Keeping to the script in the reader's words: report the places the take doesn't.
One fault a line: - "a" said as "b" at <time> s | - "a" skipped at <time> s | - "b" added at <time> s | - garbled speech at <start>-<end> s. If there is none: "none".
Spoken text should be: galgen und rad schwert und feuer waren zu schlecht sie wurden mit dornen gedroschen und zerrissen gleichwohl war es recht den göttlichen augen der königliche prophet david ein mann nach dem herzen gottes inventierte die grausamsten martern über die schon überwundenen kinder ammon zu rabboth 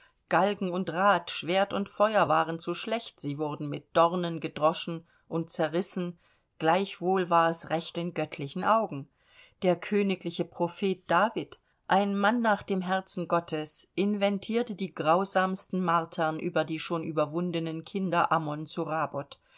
none